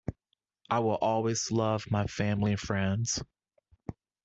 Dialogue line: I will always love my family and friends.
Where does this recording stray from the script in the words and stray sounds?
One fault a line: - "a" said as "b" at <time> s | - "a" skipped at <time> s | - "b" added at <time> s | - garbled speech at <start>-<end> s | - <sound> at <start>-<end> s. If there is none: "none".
none